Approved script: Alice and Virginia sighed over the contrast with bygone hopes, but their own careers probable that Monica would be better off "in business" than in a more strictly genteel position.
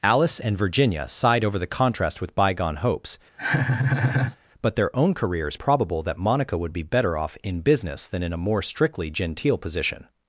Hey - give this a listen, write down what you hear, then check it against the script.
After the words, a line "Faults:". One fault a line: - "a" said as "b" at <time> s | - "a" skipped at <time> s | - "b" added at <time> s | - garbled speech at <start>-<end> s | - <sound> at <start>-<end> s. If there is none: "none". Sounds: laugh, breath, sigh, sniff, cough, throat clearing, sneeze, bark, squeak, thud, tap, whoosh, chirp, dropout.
Alice and Virginia sighed over the contrast with bygone hopes, but their own careers probable that Monica would be better off "in business" than in a more strictly genteel position.
Faults:
- laugh at 3.4-4.4 s